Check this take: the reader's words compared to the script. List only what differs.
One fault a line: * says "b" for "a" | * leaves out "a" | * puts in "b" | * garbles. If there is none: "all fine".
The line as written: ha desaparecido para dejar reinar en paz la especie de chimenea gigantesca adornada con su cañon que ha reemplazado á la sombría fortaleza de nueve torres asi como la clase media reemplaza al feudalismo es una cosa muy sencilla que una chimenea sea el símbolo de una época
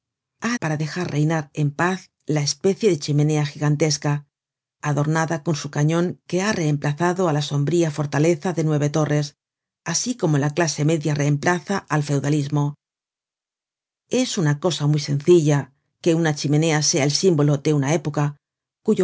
* leaves out "desaparecido"